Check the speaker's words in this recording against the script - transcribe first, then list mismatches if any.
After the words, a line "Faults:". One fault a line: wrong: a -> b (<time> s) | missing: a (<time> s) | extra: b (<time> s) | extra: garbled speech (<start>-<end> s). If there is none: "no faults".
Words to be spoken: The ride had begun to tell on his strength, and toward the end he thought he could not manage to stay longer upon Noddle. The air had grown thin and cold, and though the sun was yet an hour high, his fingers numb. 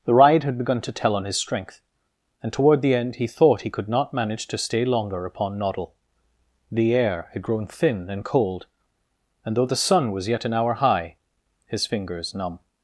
The ride had begun to tell on his strength, and toward the end he thought he could not manage to stay longer upon Noddle. The air had grown thin and cold, and though the sun was yet an hour high, his fingers numb.
Faults:
no faults